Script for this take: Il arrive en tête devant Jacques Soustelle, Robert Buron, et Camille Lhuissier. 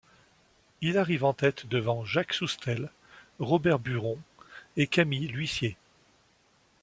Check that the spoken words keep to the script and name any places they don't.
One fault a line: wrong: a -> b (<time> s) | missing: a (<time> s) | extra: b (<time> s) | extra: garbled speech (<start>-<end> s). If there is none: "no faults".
no faults